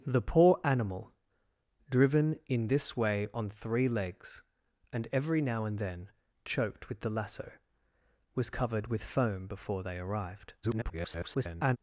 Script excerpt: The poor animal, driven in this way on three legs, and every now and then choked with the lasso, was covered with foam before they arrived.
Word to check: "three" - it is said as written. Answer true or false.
true